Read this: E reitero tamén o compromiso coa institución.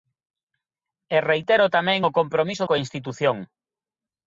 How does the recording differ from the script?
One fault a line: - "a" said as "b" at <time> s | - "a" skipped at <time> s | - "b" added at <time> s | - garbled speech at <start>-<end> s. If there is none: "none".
none